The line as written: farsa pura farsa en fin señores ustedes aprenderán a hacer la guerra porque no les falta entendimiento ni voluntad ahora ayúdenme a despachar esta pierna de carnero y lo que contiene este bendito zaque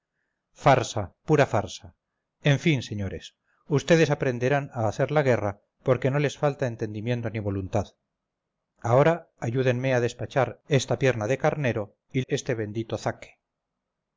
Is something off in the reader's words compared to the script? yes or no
yes